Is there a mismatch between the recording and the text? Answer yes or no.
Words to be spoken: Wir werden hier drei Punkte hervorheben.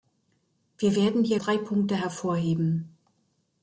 no